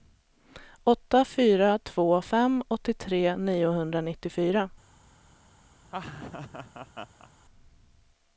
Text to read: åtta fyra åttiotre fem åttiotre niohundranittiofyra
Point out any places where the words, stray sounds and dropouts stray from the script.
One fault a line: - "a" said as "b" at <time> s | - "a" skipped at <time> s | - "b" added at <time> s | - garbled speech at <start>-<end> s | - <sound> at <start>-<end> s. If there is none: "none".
- "åttiotre" said as "två" at 1.8 s
- laugh at 5.8-7.3 s